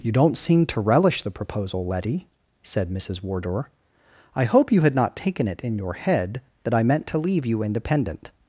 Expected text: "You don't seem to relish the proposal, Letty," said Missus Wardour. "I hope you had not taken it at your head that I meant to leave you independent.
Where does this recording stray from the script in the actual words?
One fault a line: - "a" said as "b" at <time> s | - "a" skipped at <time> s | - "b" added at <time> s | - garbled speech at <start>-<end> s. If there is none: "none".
- "at" said as "in" at 5.6 s